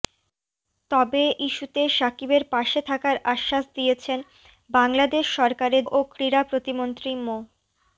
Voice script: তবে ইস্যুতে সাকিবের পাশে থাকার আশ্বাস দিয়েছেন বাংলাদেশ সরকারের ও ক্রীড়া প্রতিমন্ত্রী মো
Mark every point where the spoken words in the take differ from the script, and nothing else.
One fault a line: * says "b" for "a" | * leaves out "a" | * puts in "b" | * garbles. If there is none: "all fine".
all fine